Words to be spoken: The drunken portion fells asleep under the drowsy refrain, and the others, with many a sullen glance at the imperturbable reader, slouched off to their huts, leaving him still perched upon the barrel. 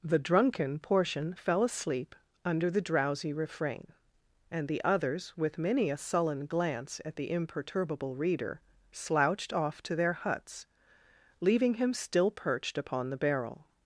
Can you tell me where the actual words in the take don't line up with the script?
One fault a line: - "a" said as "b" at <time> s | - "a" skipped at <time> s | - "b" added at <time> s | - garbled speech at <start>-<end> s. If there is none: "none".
- "fells" said as "fell" at 1.3 s